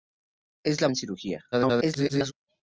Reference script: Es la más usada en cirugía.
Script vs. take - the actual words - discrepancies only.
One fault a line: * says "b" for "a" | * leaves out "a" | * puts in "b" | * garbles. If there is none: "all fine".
* leaves out "más usada"
* garbles